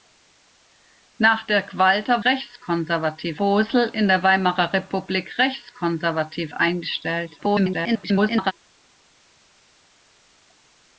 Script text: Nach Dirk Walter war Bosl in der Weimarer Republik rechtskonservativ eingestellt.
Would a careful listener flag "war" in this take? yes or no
yes